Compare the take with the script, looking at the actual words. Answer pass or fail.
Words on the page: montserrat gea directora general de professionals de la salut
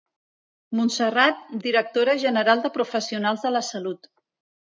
fail